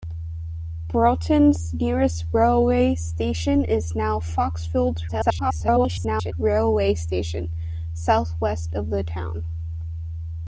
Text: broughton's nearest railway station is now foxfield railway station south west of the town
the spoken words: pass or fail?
fail